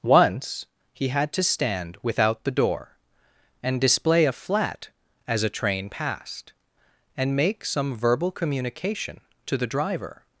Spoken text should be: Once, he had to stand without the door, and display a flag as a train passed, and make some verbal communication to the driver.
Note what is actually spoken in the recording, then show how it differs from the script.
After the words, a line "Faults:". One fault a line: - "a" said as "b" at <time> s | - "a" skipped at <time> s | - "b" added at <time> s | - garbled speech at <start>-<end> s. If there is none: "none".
Once, he had to stand without the door, and display a flat as a train passed, and make some verbal communication to the driver.
Faults:
- "flag" said as "flat" at 4.3 s